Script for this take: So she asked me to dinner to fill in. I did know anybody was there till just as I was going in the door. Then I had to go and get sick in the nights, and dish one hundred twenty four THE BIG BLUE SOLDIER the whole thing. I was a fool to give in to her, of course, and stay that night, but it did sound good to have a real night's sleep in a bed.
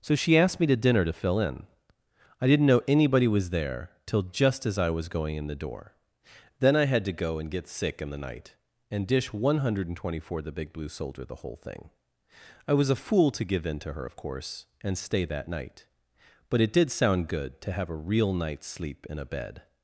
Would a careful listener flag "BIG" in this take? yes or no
no